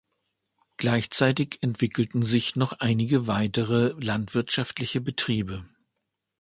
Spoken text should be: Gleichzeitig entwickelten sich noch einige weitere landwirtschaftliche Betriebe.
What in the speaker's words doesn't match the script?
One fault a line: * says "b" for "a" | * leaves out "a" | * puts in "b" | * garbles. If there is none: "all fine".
all fine